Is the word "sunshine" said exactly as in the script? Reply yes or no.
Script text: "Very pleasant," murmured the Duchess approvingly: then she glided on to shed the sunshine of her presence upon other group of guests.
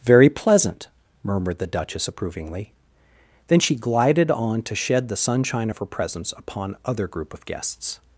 yes